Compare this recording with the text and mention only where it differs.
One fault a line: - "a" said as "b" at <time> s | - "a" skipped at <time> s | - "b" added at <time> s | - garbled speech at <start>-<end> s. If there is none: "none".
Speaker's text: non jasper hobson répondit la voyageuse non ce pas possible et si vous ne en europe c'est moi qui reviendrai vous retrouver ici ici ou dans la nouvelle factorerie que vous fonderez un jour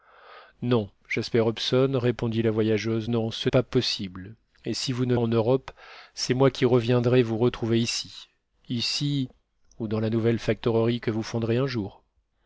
none